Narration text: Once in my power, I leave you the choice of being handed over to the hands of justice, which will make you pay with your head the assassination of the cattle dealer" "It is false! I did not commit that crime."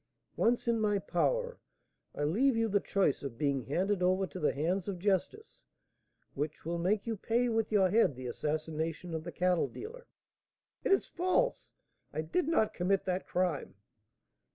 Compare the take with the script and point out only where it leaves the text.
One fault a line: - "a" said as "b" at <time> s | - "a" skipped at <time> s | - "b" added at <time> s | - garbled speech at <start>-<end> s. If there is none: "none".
none